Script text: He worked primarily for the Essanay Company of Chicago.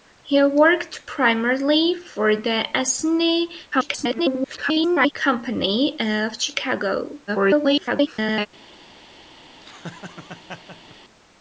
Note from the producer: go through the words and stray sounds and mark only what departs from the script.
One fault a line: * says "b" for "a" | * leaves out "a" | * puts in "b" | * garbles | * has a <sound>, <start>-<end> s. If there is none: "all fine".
* garbles
* garbles
* has a laugh, 9.6-11.0 s